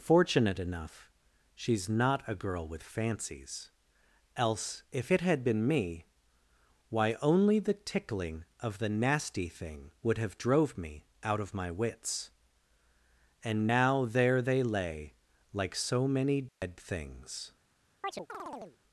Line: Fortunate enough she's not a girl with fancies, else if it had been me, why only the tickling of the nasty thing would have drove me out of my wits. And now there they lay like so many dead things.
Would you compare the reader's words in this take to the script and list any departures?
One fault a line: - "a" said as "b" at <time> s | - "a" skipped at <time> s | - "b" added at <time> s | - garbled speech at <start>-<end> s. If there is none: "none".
none